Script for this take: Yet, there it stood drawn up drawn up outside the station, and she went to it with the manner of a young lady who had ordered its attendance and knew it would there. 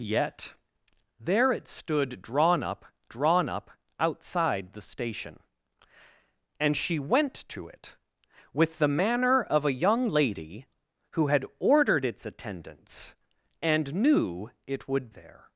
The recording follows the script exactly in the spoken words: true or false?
true